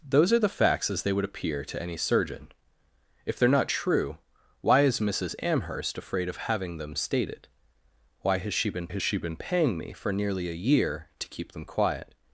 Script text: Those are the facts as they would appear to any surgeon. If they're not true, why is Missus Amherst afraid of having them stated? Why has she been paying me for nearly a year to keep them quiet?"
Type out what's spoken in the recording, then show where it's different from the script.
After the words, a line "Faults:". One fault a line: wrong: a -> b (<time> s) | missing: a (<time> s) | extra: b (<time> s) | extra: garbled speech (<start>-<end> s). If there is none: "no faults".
Those are the facts as they would appear to any surgeon. If they're not true, why is Missus Amherst afraid of having them stated? Why has she been has she been paying me for nearly a year to keep them quiet?"
Faults:
extra: has she been (8.9 s)